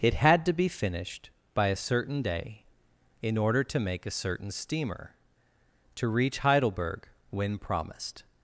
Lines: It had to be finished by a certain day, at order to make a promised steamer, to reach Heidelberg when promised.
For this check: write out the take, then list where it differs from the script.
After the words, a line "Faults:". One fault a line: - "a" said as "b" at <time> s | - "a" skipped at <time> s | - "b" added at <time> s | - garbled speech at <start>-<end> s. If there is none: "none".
It had to be finished by a certain day, in order to make a certain steamer, to reach Heidelberg when promised.
Faults:
- "at" said as "in" at 3.2 s
- "promised" said as "certain" at 4.1 s